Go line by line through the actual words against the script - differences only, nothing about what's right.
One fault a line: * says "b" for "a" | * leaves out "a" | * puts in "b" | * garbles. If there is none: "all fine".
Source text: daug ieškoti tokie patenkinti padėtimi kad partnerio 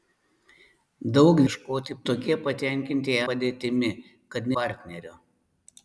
all fine